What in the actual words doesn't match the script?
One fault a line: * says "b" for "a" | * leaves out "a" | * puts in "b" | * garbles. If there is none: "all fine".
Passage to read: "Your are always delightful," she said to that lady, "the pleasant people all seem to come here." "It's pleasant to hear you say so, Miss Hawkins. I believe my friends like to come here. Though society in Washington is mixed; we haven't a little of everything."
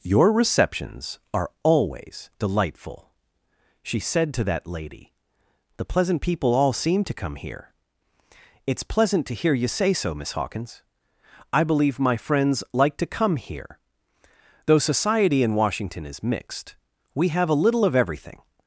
* puts in "receptions"
* says "have" for "haven't"